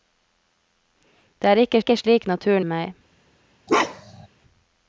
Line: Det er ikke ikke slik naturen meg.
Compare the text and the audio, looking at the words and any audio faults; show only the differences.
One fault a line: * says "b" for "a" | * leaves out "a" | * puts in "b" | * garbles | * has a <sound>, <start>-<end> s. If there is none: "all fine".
* has a bark, 3.7-4.3 s